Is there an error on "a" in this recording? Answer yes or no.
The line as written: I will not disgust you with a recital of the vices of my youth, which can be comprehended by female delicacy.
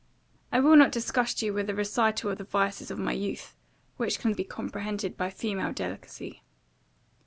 no